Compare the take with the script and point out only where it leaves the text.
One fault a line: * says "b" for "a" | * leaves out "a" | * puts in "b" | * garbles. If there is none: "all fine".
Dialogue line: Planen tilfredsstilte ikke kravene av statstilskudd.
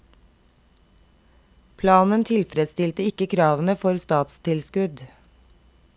* says "for" for "av"